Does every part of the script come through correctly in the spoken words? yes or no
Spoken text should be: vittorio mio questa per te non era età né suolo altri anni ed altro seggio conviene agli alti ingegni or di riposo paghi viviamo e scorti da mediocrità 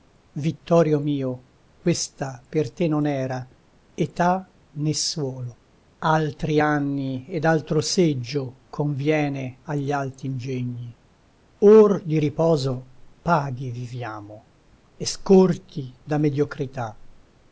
yes